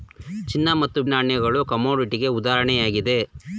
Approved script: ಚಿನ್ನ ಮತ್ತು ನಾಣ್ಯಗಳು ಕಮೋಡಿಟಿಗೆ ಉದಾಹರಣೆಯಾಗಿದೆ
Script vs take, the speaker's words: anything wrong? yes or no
no